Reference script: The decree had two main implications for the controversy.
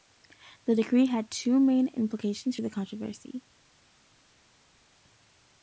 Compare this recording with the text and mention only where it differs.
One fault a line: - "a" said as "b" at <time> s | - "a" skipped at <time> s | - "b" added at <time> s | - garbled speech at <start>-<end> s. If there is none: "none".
- "for" skipped at 2.6 s